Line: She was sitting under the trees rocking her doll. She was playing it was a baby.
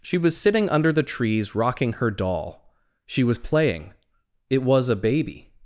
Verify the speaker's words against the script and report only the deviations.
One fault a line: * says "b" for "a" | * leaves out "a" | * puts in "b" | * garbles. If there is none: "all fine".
all fine